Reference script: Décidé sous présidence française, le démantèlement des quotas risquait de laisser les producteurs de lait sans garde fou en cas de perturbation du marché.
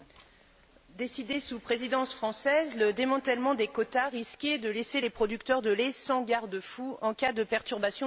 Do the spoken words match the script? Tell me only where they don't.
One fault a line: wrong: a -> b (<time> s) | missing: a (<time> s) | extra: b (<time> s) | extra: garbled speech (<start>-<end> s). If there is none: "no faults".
no faults